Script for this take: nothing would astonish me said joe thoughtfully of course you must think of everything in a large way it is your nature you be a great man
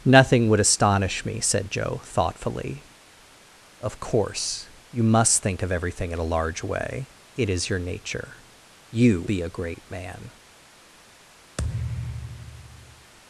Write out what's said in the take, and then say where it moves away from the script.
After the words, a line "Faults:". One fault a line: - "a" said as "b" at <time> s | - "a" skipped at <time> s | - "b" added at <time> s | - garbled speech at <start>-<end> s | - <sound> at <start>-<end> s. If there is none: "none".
nothing would astonish me said joe thoughtfully of course you must think of everything in a large way it is your nature you be a great man
Faults:
- thud at 11.6-13.1 s